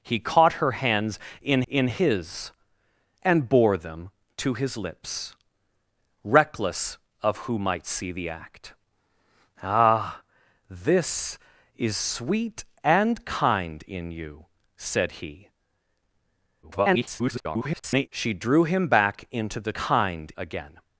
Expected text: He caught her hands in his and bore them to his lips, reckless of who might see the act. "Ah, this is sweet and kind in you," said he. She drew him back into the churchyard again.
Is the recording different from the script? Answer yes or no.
yes